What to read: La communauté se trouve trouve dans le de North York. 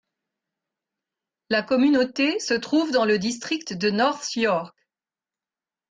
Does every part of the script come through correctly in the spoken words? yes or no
no